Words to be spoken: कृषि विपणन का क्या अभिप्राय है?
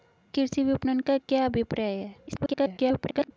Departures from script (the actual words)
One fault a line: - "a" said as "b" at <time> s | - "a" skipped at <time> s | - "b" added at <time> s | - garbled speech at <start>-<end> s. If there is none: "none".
- garbled speech at 2.3-3.3 s